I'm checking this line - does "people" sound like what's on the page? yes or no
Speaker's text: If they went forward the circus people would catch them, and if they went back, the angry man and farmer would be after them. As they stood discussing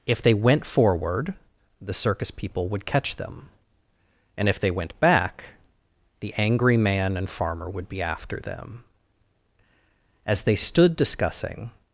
yes